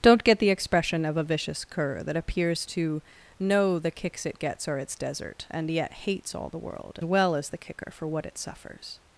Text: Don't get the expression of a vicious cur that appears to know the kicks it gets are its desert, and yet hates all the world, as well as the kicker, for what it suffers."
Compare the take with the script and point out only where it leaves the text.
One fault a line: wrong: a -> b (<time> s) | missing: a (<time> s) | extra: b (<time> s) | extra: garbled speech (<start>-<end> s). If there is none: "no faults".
missing: as (7.0 s)